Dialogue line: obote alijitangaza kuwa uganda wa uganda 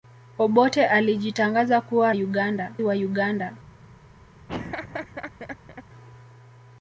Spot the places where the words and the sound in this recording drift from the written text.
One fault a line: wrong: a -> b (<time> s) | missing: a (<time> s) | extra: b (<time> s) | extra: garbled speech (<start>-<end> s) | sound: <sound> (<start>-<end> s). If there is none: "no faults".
sound: laugh (4.5-5.8 s)